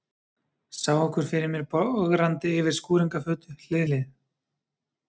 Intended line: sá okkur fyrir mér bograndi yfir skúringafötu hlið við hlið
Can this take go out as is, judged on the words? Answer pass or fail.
fail